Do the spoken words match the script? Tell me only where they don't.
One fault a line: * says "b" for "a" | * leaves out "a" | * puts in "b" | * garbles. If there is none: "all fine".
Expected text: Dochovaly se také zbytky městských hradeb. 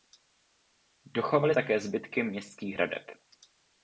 * leaves out "se"